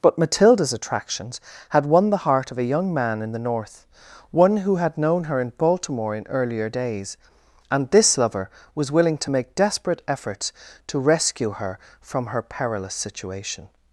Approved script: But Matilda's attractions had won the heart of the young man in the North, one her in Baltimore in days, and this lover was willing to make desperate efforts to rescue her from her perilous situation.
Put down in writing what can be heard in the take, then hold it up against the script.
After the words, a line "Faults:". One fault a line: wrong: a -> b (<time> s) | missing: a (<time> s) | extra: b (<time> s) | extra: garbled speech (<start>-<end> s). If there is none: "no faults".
But Matilda's attractions had won the heart of a young man in the North, one who had known her in Baltimore in earlier days, and this lover was willing to make desperate efforts to rescue her from her perilous situation.
Faults:
wrong: the -> a (2.6 s)
extra: who had known (4.6 s)
extra: earlier (6.3 s)